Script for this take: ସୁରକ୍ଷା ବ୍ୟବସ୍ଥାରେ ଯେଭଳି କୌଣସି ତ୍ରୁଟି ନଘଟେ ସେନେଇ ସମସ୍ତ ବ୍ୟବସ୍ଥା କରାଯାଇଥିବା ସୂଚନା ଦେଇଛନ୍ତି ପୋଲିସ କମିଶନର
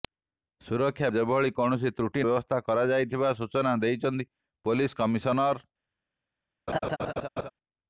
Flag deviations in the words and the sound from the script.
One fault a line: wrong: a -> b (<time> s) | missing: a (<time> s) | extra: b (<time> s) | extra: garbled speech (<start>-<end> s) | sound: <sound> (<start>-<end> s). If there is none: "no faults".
missing: ବ୍ୟବସ୍ଥାରେ (1.1 s)
missing: ନଘଟେ ସେନେଇ ସମସ୍ତ (2.2 s)
sound: laugh (6.7-7.5 s)